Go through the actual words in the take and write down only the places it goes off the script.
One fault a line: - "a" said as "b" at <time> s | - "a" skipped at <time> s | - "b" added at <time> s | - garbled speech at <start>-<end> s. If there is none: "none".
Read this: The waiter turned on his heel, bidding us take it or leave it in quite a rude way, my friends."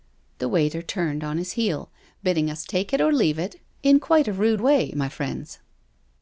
none